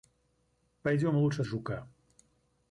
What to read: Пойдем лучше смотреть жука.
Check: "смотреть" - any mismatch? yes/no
yes